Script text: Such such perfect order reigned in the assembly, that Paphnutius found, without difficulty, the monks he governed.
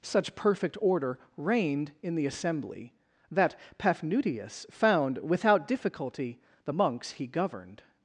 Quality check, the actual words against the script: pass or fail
fail